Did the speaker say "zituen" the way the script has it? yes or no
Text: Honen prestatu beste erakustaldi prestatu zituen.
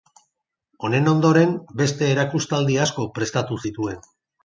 yes